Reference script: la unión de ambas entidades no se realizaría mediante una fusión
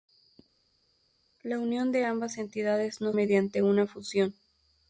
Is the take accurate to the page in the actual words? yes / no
no